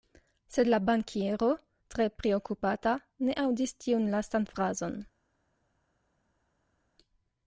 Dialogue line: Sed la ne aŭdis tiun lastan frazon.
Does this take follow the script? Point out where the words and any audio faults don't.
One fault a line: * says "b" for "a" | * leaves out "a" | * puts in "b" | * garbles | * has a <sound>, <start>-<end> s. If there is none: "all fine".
* puts in "bankiero tre priokupata"